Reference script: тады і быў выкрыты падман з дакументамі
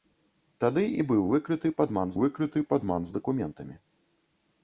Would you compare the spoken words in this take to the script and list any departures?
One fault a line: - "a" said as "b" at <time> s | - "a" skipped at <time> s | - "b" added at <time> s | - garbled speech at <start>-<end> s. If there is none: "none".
- "выкрыты падман" added at 2.2 s